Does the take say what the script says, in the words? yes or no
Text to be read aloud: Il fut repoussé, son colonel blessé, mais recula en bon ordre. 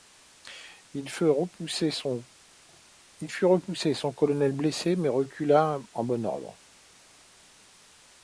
yes